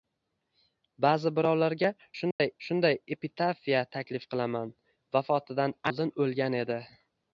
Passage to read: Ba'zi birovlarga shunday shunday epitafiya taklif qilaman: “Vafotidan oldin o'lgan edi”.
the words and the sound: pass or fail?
fail